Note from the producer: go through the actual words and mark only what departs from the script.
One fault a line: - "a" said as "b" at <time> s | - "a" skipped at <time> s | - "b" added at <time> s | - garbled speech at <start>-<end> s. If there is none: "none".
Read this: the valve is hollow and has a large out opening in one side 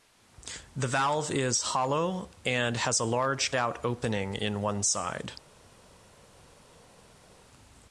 none